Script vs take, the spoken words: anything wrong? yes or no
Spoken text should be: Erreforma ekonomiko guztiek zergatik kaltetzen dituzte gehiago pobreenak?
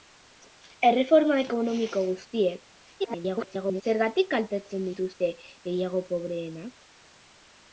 yes